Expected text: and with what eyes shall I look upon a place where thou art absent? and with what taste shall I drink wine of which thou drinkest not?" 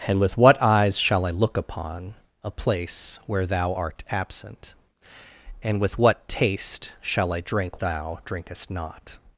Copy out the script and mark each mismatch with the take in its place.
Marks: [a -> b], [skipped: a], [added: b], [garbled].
and with what eyes shall I look upon a place where thou art absent? and with what taste shall I drink [skipped: wine of which] thou drinkest not?"